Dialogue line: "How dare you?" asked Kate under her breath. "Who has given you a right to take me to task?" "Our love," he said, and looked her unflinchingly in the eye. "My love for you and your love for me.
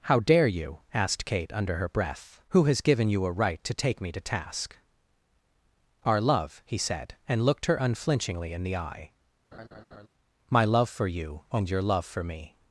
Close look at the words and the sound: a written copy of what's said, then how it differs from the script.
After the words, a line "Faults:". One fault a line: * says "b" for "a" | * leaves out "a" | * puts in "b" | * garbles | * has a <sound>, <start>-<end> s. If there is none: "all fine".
"How dare you?" asked Kate under her breath. "Who has given you a right to take me to task?" "Our love," he said, and looked her unflinchingly in the eye. "My love for you and your love for me.
Faults:
* has a laugh, 9.5-10.1 s